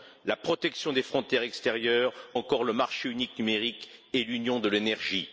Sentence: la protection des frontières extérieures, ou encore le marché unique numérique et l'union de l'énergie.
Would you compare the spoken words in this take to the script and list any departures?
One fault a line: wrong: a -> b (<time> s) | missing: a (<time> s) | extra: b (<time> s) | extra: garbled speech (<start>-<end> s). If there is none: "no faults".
missing: ou (2.1 s)